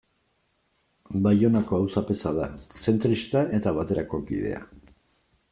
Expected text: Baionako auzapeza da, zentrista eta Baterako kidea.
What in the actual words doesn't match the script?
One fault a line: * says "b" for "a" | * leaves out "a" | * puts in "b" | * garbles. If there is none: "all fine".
all fine